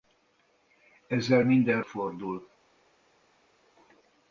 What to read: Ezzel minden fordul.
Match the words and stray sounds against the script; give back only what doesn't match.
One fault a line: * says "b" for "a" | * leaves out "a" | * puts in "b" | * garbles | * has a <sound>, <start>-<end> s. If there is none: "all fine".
all fine